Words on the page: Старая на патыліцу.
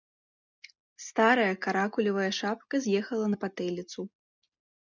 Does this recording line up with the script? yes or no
no